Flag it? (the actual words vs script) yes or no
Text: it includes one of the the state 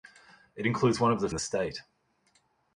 no